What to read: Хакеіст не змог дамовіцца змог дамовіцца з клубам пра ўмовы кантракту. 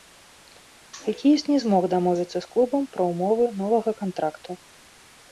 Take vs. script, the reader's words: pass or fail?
fail